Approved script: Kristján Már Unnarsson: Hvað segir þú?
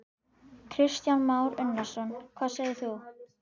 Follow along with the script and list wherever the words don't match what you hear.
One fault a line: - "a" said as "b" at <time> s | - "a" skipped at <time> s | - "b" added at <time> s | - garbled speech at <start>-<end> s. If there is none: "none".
none